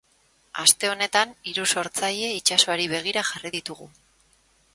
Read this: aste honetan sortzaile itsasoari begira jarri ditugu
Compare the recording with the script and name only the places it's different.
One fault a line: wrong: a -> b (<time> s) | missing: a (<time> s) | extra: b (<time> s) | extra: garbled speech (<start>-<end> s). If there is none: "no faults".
extra: hiru (1.5 s)